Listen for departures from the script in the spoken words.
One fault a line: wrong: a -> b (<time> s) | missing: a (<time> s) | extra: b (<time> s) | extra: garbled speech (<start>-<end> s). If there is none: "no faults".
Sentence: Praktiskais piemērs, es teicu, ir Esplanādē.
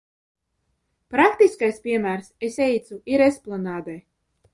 no faults